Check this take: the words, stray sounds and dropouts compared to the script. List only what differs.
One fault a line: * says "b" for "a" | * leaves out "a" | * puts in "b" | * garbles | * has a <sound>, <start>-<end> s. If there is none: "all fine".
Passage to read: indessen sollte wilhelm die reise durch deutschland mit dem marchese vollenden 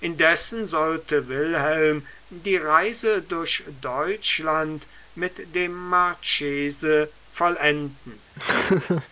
* has a laugh, 8.4-9.1 s